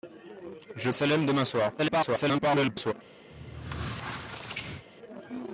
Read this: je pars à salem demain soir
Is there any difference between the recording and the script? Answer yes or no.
yes